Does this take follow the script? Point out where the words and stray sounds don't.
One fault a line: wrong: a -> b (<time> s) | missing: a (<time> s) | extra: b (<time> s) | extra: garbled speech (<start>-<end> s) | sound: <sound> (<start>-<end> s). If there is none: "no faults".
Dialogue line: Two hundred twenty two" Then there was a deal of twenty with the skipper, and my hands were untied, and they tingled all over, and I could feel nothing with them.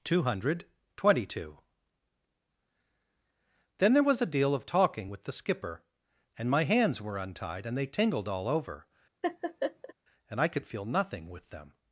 wrong: twenty -> talking (4.7 s)
sound: laugh (9.2-9.9 s)